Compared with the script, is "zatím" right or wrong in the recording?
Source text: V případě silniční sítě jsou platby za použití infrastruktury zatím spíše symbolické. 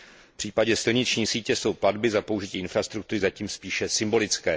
right